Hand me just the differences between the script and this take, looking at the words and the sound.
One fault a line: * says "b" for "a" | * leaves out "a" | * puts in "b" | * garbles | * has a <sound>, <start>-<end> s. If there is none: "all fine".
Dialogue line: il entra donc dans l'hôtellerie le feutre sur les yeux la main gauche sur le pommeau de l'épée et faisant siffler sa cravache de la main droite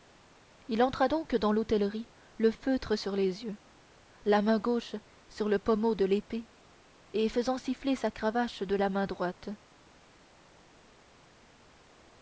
all fine